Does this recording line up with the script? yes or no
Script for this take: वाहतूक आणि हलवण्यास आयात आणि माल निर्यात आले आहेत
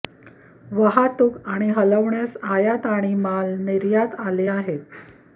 yes